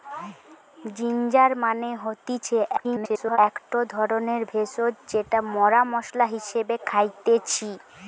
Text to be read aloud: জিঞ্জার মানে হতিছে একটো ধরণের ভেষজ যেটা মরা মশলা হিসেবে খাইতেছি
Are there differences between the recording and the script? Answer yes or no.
yes